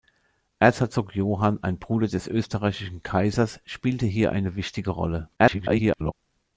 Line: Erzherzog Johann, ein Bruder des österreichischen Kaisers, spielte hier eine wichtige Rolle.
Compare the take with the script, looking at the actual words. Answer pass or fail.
fail